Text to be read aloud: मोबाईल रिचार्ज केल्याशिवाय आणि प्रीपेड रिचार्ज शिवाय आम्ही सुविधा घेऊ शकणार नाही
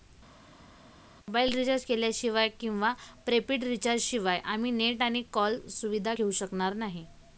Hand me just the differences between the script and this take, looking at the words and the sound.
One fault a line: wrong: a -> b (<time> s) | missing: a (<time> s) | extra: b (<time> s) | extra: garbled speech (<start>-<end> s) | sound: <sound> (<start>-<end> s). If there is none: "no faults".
wrong: आणि -> किंवा (2.5 s)
extra: नेट आणि कॉल (4.7 s)